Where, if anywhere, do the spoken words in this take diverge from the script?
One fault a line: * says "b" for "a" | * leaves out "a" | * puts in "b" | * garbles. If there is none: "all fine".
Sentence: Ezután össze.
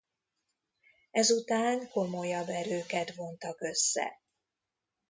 * puts in "komolyabb erőket vontak"